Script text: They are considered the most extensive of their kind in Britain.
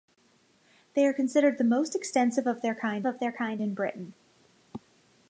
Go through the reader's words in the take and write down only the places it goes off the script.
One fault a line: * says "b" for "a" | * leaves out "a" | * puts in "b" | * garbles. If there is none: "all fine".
* puts in "of their kind"